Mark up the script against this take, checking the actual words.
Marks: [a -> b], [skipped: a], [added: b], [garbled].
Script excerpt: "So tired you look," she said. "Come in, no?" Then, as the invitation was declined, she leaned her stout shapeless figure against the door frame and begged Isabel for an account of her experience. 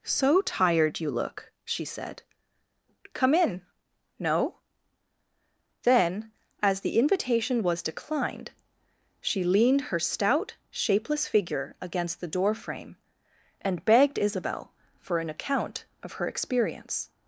"So tired you look," she said. "Come in, no?" Then, as the invitation was declined, she leaned her stout shapeless figure against the door frame and begged Isabel for an account of her experience.